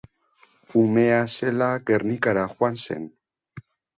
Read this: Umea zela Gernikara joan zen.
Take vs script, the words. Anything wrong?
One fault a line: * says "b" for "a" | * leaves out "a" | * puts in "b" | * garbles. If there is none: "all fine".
all fine